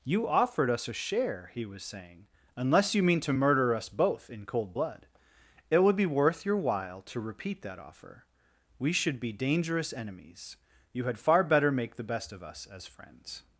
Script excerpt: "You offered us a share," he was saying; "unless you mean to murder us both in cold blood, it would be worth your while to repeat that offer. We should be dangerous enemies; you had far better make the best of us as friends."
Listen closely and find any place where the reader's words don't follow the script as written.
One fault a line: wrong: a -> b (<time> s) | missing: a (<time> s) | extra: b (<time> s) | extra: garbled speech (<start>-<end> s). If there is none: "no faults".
no faults